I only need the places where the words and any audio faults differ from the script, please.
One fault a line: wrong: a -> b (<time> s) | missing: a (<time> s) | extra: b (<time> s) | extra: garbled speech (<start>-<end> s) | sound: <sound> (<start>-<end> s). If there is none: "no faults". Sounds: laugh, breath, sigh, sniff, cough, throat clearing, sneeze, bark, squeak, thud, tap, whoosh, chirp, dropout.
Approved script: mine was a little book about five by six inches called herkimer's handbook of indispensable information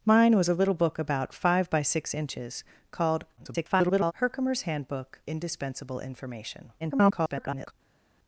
extra: garbled speech (3.4-4.1 s)
missing: of (5.2 s)
extra: garbled speech (6.8-7.7 s)